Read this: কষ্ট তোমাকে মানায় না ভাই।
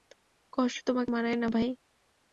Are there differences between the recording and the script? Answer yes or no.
no